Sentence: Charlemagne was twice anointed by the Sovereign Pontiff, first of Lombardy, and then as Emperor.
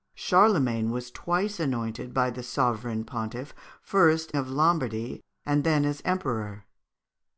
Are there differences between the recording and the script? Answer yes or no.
no